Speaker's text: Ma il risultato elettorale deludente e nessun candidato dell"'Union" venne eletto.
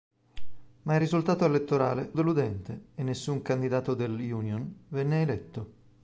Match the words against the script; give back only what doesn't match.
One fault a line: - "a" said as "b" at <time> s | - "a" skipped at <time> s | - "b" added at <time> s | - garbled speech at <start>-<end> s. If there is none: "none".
none